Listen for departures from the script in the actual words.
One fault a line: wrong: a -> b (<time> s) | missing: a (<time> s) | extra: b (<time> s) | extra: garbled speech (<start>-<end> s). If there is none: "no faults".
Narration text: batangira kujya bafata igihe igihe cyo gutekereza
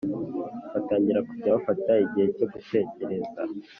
missing: igihe (2.3 s)